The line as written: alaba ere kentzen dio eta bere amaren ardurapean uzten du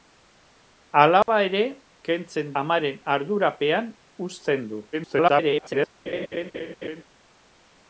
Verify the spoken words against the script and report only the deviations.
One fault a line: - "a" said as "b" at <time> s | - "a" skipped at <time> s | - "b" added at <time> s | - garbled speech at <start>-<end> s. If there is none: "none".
- "dio eta bere" skipped at 2.5 s
- garbled speech at 4.9-5.9 s